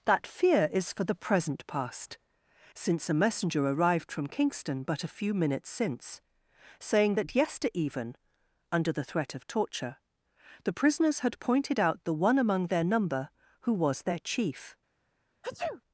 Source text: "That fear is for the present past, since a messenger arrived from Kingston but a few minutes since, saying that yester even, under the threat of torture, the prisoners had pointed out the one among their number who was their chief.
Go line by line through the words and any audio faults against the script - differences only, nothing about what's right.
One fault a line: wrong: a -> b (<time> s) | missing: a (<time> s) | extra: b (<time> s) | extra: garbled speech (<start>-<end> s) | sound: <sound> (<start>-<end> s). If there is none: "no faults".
sound: sneeze (15.4-15.8 s)